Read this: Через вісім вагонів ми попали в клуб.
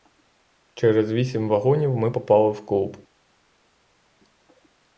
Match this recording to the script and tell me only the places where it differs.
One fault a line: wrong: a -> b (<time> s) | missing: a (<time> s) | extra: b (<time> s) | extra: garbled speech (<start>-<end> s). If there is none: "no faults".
no faults